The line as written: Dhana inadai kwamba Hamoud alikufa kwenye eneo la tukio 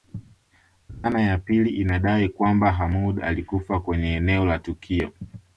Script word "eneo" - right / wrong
right